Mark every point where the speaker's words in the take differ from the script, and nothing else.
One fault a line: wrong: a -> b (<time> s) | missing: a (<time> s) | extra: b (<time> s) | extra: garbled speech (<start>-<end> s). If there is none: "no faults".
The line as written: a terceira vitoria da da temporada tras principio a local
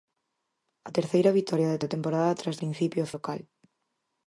no faults